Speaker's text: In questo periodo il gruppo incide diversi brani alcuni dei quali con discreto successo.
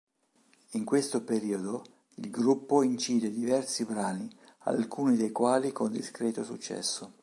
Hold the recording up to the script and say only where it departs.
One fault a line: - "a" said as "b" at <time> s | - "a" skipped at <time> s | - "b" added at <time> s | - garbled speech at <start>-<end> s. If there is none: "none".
none